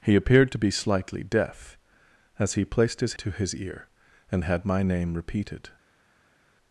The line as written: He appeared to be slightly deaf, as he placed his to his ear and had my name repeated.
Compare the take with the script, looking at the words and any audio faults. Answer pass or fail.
pass